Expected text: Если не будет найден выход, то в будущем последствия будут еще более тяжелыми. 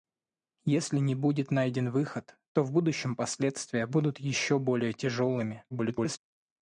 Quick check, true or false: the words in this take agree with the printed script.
false